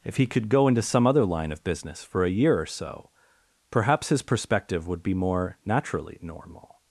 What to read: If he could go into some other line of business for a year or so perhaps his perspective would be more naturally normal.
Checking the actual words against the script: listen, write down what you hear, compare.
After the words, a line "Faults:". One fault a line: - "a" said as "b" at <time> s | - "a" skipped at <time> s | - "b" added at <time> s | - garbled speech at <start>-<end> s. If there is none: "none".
If he could go into some other line of business for a year or so perhaps his perspective would be more naturally normal.
Faults:
none